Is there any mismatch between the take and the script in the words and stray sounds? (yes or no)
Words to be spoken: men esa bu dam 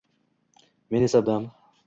yes